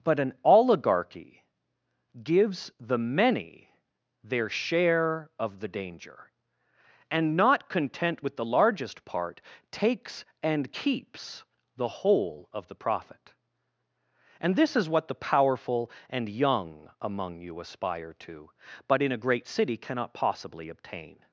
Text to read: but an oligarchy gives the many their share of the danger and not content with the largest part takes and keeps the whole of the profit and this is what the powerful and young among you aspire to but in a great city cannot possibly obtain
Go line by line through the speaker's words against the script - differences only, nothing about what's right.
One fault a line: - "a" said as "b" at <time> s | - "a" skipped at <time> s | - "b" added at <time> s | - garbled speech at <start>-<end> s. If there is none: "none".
none